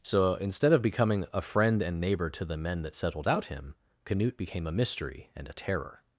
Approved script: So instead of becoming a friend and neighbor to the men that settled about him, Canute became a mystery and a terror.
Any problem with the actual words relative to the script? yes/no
yes